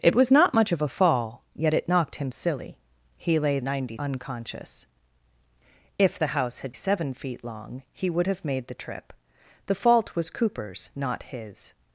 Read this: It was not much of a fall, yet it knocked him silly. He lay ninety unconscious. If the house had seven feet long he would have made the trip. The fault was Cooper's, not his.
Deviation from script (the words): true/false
false